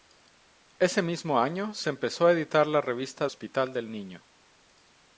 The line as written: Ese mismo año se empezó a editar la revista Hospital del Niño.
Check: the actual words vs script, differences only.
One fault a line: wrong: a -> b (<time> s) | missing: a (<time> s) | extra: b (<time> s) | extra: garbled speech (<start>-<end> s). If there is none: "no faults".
no faults